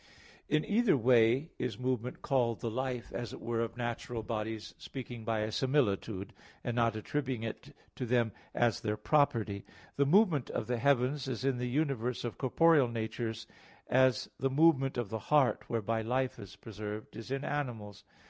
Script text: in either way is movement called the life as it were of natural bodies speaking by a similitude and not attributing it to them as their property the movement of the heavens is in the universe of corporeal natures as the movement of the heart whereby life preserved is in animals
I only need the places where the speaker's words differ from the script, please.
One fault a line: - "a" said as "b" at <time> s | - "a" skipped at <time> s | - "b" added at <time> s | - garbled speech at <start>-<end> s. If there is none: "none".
- "is" added at 16.4 s